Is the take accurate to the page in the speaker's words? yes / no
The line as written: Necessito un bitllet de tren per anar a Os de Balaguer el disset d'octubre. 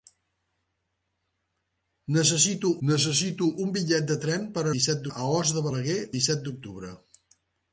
no